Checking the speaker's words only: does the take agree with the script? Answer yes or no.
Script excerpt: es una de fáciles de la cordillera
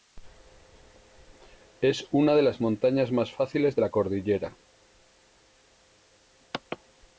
no